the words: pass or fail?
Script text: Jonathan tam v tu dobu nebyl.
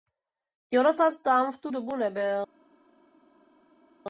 pass